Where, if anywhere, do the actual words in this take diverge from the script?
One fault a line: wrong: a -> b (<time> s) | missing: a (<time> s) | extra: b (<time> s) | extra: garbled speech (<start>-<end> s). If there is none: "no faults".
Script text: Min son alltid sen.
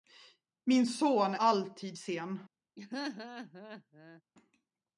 no faults